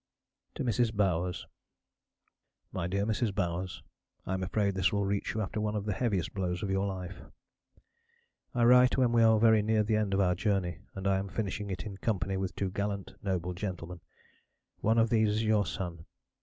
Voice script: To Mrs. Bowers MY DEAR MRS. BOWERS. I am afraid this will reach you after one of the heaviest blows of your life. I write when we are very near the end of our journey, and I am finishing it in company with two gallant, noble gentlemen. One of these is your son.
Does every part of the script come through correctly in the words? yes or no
yes